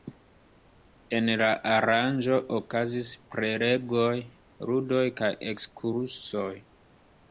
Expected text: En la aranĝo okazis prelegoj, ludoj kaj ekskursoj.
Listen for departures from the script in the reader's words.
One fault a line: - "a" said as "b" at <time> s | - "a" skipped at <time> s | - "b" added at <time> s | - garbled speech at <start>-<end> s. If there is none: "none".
none